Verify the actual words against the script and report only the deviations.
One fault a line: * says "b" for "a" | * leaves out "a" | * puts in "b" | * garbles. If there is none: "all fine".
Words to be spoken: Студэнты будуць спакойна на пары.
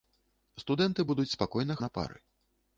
all fine